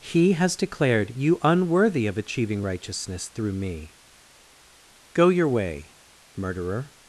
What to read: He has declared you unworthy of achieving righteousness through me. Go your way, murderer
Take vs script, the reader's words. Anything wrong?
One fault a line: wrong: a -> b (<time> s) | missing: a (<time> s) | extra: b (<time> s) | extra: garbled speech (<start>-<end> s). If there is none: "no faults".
no faults